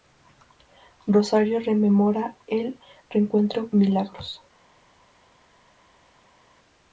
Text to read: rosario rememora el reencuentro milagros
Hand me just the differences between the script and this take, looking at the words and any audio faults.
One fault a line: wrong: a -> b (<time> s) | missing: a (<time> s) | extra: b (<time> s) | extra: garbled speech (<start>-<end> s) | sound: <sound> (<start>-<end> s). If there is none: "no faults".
no faults